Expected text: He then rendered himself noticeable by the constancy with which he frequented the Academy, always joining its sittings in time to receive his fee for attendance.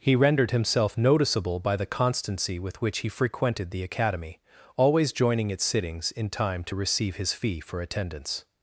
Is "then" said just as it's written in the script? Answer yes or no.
no